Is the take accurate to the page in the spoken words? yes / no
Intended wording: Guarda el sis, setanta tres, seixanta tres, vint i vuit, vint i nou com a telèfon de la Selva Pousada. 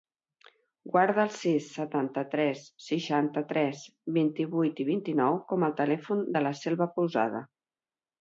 yes